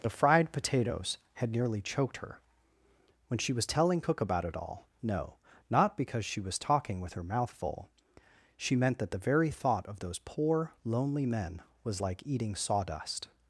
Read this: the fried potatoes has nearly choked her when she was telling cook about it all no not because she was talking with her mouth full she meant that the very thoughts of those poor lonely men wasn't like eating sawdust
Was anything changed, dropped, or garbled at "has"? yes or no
yes